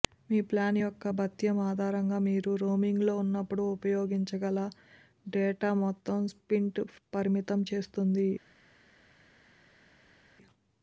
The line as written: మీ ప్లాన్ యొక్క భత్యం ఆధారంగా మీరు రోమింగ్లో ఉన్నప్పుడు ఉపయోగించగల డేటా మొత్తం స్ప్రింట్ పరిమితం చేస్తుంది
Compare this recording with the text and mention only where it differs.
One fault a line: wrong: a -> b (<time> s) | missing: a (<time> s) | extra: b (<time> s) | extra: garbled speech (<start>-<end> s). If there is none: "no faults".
no faults